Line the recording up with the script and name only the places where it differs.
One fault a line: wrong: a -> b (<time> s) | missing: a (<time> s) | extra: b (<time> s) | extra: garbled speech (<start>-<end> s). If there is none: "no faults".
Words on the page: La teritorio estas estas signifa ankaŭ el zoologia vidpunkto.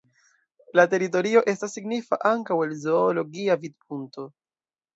missing: estas (1.8 s)